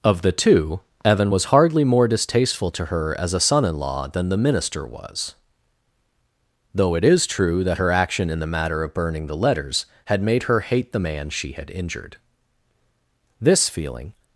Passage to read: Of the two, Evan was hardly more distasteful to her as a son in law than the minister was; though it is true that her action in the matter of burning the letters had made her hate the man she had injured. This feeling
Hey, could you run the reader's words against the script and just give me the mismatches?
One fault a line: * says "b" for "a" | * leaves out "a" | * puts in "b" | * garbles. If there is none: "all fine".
all fine